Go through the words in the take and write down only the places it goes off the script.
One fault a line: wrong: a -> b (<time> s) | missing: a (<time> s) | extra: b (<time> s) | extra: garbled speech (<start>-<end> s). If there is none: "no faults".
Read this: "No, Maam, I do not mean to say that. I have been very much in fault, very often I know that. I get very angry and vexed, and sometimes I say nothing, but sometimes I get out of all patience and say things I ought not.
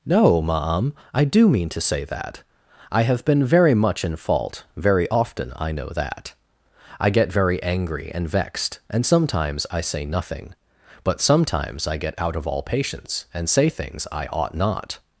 missing: not (1.5 s)